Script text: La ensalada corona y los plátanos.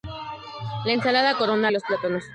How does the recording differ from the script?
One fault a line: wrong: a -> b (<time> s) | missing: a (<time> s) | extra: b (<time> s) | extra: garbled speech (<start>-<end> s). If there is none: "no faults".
no faults